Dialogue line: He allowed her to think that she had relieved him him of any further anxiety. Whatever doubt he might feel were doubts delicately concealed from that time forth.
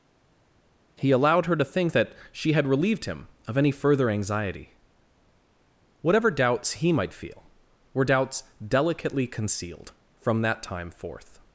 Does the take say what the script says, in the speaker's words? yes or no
no